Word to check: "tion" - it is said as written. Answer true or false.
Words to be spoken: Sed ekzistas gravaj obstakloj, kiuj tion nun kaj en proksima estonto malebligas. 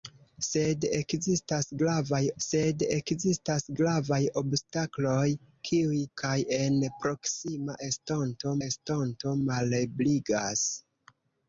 false